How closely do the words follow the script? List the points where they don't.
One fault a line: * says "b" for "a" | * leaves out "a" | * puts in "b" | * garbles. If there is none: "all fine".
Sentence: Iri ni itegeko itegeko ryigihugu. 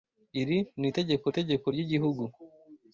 all fine